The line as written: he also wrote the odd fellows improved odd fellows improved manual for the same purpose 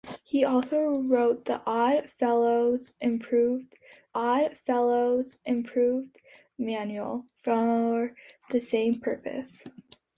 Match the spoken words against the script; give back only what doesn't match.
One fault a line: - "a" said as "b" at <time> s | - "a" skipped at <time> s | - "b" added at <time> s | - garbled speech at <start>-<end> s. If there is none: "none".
none